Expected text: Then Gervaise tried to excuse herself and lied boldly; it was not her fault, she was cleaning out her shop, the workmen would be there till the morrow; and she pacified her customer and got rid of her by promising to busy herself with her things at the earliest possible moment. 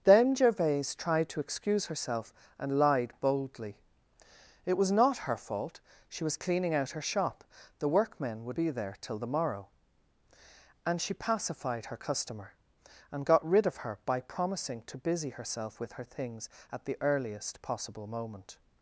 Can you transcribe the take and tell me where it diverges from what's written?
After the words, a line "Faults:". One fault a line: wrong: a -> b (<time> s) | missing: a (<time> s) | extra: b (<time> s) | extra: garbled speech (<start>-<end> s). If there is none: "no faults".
Then Gervaise tried to excuse herself and lied boldly; it was not her fault, she was cleaning out her shop, the workmen would be there till the morrow; and she pacified her customer and got rid of her by promising to busy herself with her things at the earliest possible moment.
Faults:
no faults